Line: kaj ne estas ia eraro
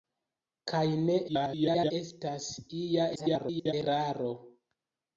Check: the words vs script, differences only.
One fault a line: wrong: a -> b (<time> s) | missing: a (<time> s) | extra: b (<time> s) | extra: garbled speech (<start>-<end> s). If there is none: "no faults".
extra: garbled speech (1.3-1.9 s)
extra: garbled speech (3.2-3.7 s)